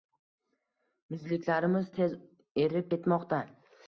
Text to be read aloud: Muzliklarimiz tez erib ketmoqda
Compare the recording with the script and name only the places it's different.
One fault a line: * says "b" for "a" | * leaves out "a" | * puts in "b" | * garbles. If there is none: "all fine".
all fine